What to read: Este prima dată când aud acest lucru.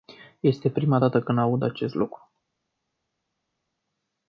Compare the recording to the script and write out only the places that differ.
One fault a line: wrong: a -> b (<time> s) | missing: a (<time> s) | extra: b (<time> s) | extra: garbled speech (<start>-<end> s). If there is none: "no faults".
no faults